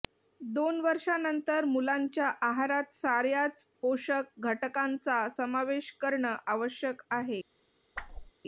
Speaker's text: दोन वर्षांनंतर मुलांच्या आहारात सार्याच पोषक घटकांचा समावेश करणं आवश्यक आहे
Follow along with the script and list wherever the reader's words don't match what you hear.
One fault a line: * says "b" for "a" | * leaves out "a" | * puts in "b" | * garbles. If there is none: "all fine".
all fine